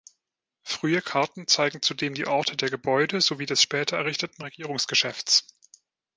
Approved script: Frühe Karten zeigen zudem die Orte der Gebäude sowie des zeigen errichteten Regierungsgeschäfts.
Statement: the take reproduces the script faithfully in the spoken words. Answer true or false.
false